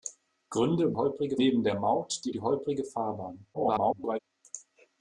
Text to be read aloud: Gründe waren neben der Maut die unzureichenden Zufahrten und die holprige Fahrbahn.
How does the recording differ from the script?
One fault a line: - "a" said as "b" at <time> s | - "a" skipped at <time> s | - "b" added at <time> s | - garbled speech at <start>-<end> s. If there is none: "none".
- "waren" said as "holprige" at 0.9 s
- "unzureichenden Zufahrten und" skipped at 2.3 s
- garbled speech at 3.5-4.2 s